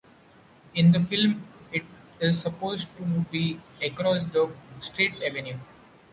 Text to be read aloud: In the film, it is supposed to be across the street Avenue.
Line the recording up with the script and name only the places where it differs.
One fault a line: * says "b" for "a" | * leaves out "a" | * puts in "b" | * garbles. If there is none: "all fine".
all fine